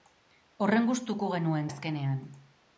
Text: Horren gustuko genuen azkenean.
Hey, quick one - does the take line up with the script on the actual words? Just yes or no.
yes